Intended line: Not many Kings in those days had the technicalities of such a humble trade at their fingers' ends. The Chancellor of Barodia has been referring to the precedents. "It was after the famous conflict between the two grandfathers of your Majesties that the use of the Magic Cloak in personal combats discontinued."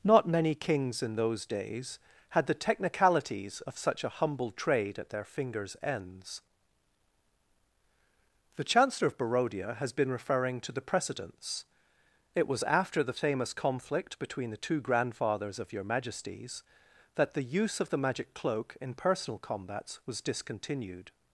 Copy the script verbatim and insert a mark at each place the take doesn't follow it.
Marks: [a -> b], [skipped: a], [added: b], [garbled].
Not many Kings in those days had the technicalities of such a humble trade at their fingers' ends. The Chancellor of Barodia has been referring to the precedents. "It was after the famous conflict between the two grandfathers of your Majesties that the use of the Magic Cloak in personal combats [added: was] discontinued."